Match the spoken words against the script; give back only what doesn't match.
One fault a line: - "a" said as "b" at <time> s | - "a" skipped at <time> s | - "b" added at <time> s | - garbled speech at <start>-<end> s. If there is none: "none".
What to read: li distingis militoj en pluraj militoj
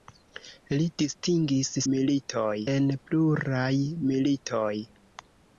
none